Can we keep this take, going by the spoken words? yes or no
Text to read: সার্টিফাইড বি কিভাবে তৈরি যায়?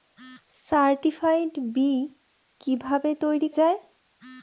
yes